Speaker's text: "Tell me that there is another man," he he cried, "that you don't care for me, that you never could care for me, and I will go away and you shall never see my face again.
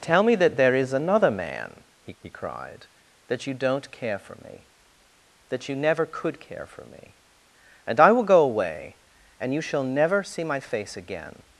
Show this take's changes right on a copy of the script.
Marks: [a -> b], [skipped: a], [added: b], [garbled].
"Tell me that there is another man," he he cried, "that you don't care for me, that you never could care for me, and I will go away and you shall never see my face again.